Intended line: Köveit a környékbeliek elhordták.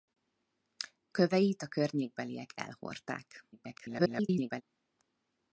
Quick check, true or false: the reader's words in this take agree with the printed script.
false